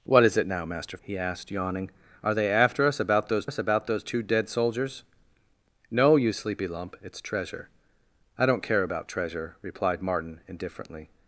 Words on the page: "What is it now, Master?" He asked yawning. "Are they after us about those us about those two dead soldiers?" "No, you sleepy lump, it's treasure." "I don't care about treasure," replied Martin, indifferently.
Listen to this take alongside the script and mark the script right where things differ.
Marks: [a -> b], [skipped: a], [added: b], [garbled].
"What is it now, Master?" He asked yawning. "Are they after us about those us about those two dead soldiers?" "No, you sleepy lump, it's treasure." "I don't care about treasure," replied Martin, indifferently.